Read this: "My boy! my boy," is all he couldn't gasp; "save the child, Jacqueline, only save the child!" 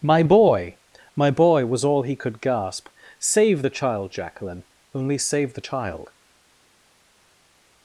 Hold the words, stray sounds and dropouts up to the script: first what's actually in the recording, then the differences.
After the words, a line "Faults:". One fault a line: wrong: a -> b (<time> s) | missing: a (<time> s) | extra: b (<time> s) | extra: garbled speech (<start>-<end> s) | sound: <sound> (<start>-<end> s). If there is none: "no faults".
"My boy! my boy," was all he could gasp; "save the child, Jacqueline, only save the child!"
Faults:
wrong: is -> was (1.7 s)
wrong: couldn't -> could (2.2 s)